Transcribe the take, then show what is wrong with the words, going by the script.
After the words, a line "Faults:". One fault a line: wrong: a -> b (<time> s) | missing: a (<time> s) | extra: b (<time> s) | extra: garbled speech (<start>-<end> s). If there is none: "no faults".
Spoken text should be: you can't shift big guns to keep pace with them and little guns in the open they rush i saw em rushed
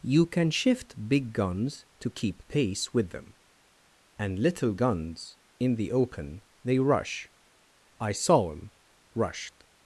you can shift big guns to keep pace with them and little guns in the open they rush i saw em rushed
Faults:
wrong: can't -> can (0.2 s)